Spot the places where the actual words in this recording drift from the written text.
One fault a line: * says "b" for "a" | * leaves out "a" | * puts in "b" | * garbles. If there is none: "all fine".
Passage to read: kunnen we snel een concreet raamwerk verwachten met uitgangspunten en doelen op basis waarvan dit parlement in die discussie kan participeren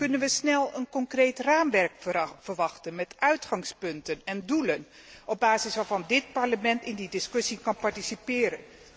all fine